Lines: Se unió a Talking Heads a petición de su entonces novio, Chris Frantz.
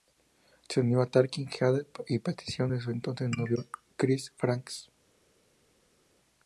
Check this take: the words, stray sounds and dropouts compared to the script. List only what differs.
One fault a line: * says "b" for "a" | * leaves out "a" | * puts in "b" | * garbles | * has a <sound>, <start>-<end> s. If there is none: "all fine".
all fine